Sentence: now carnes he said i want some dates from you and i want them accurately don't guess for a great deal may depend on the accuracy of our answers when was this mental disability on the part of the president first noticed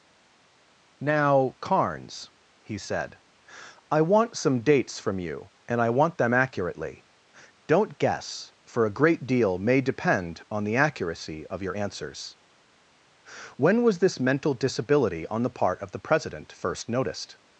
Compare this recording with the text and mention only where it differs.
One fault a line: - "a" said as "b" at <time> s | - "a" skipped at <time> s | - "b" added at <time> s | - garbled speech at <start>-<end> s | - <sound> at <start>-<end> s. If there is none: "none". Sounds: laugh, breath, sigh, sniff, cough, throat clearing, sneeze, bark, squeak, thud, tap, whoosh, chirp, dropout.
- "our" said as "your" at 11.6 s